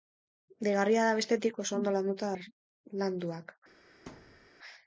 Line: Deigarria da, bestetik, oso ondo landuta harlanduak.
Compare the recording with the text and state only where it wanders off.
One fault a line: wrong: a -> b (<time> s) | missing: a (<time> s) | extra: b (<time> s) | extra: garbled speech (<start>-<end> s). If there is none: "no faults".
no faults